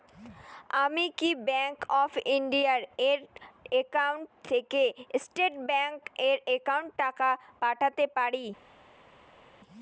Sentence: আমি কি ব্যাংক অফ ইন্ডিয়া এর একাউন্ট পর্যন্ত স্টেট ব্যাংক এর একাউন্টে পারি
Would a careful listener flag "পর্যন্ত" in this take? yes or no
yes